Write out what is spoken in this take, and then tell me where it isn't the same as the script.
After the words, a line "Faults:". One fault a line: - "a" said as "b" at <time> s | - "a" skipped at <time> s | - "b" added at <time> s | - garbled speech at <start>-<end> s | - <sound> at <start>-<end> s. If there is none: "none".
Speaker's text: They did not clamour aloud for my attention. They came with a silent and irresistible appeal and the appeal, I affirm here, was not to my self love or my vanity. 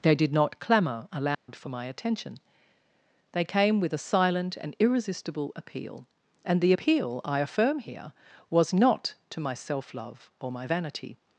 They did not clamour aloud for my attention. They came with a silent and irresistible appeal and the appeal, I affirm here, was not to my self love or my vanity.
Faults:
- dropout at 1.3-1.5 s